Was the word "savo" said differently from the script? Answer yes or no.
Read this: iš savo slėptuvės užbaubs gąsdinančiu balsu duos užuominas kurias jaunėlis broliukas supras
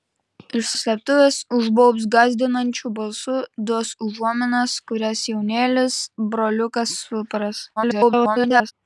yes